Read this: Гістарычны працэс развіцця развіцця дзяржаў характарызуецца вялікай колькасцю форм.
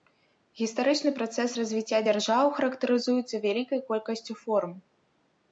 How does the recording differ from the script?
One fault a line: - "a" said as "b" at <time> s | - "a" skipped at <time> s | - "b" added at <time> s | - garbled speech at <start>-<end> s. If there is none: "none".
- "развіцця" skipped at 2.0 s